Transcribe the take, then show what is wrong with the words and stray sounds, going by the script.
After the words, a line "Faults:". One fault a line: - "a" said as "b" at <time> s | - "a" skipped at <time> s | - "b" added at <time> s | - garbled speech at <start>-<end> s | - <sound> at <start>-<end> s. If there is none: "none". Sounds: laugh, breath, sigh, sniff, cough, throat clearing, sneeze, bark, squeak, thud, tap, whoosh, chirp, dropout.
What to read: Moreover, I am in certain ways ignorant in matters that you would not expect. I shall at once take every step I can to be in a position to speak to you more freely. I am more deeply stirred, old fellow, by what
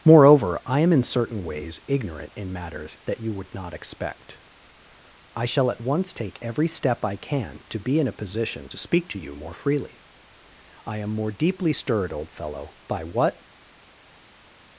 Moreover, I am in certain ways ignorant in matters that you would not expect. I shall at once take every step I can to be in a position to speak to you more freely. I am more deeply stirred, old fellow, by what
Faults:
none